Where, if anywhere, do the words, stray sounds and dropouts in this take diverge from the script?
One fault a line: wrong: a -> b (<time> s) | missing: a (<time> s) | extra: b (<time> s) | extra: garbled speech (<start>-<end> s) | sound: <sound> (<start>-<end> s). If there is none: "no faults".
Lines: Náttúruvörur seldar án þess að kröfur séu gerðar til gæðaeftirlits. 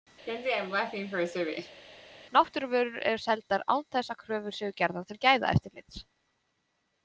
sound: laugh (0.3-1.8 s)
extra: eru (3.1 s)